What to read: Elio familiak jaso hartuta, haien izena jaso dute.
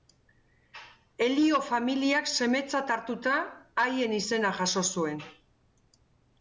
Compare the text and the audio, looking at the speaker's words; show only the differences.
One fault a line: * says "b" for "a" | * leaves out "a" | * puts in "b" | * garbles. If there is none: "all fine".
* says "semetzat" for "jaso"
* says "zuen" for "dute"